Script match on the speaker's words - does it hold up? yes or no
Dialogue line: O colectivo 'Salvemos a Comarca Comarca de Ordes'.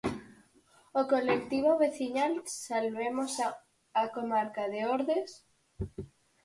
no